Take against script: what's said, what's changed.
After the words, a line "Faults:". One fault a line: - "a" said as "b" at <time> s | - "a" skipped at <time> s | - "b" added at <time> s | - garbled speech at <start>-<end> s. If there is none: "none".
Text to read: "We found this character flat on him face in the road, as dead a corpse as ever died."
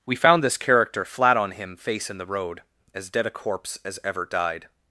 "We found this character flat on him face in the road, as dead a corpse as ever died."
Faults:
none